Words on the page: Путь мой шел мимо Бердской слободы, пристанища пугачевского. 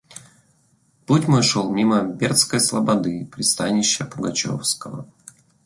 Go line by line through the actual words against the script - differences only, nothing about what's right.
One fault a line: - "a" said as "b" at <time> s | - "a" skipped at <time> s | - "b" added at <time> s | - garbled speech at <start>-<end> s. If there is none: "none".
none